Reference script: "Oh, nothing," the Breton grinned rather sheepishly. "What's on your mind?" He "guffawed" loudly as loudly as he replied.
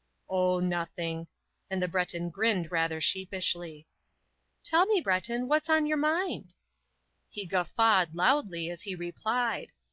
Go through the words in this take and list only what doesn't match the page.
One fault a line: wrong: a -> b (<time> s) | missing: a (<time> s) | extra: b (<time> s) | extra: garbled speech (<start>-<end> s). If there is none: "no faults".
extra: and (1.7 s)
extra: Tell me Breton (4.6 s)
missing: loudly as (8.8 s)